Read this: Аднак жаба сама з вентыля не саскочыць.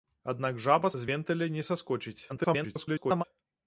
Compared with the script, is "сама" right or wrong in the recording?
wrong